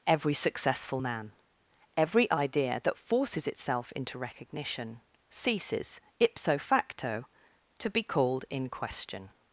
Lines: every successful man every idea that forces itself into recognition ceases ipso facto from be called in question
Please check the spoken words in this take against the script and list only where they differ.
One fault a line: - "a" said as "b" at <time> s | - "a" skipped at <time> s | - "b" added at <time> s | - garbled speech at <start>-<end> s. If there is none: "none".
- "from" said as "to" at 7.8 s